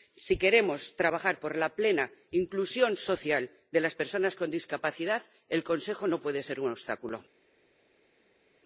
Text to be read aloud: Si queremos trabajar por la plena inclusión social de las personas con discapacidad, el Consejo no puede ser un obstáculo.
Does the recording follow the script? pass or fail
pass